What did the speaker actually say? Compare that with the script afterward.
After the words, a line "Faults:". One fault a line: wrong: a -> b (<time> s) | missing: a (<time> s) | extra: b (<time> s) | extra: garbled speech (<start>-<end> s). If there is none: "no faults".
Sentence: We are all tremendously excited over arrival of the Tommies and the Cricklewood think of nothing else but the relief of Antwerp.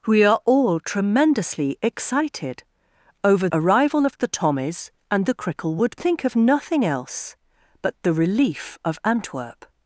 We are all tremendously excited over arrival of the Tommies and the Cricklewood think of nothing else but the relief of Antwerp.
Faults:
no faults